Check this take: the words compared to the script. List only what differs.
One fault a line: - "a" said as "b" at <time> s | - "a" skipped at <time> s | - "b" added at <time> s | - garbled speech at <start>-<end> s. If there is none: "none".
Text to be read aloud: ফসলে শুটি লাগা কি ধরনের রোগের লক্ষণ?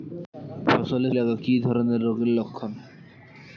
- "শুটি" skipped at 1.1 s